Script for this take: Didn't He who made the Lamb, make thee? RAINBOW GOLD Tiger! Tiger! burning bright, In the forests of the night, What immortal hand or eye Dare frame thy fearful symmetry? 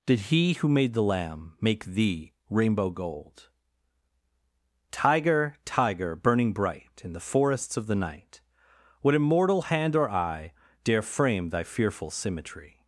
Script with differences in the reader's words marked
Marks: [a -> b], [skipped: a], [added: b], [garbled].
[Didn't -> Did] He who made the Lamb, make thee? RAINBOW GOLD Tiger! Tiger! burning bright, In the forests of the night, What immortal hand or eye Dare frame thy fearful symmetry?